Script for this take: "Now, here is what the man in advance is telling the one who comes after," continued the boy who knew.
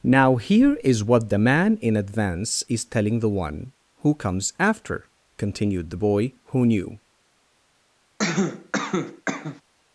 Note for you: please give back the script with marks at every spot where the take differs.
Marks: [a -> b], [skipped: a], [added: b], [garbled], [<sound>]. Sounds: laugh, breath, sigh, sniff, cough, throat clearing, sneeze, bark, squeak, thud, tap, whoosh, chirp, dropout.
"Now, here is what the man in advance is telling the one who comes after," continued the boy who knew. [cough]